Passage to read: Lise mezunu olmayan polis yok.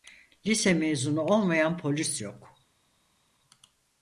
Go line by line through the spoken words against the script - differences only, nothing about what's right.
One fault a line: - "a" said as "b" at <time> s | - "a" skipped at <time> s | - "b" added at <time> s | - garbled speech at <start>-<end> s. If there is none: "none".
none